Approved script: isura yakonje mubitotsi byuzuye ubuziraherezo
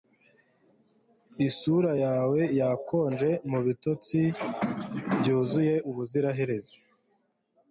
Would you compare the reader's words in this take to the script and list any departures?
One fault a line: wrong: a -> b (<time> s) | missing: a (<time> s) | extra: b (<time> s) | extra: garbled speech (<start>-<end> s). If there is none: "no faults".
extra: yawe (2.0 s)